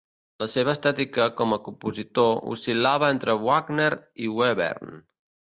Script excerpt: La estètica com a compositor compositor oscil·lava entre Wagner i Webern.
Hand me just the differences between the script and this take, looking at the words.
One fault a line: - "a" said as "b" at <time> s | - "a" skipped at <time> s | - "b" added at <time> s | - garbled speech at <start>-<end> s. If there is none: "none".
- "seva" added at 0.5 s
- "compositor" skipped at 2.3 s